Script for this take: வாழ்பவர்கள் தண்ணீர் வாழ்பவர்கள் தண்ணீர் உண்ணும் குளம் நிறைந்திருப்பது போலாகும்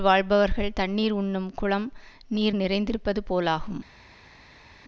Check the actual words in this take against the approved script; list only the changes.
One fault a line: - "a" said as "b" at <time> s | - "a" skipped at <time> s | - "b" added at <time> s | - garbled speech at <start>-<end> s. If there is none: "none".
- "வாழ்பவர்கள் தண்ணீர்" skipped at 1.1 s
- "நீர்" added at 2.3 s